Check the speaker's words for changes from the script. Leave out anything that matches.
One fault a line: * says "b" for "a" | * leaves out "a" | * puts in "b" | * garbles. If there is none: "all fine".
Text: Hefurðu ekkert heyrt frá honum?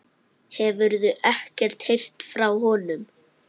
all fine